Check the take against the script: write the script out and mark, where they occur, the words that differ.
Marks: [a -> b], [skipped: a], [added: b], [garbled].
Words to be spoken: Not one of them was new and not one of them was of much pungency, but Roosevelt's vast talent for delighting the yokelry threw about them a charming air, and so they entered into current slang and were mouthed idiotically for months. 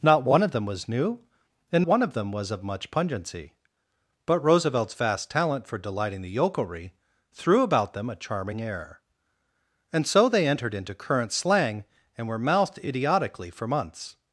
Not one of them was new and [skipped: not] one of them was of much pungency, but Roosevelt's vast talent for delighting the yokelry threw about them a charming air, and so they entered into current slang and were mouthed idiotically for months.